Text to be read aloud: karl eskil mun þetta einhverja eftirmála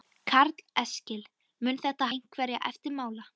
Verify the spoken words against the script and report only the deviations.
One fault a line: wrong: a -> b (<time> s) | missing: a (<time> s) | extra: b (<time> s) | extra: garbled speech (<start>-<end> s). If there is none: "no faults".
no faults